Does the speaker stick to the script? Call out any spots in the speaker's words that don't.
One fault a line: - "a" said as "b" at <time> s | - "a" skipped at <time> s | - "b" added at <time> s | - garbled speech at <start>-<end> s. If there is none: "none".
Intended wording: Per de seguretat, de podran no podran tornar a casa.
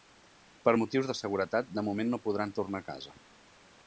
- "motius" added at 0.8 s
- "podran" said as "moment" at 1.9 s